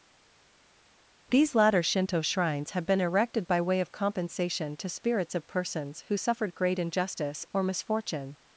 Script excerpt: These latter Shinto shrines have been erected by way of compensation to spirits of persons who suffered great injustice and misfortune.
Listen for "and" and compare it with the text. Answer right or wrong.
wrong